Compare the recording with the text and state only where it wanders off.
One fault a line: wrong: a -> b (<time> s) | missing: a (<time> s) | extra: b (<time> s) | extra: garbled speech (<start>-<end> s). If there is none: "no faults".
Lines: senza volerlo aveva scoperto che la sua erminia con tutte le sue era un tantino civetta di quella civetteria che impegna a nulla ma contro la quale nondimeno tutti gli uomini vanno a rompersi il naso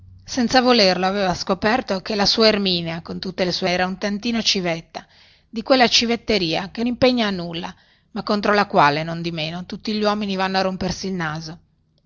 no faults